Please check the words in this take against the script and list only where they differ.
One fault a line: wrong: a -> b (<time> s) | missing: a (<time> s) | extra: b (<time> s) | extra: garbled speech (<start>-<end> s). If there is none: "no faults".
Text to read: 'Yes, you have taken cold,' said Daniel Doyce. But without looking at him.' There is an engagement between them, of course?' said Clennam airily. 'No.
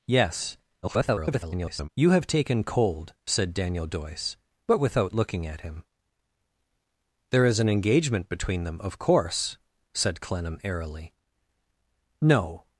extra: garbled speech (0.8-1.9 s)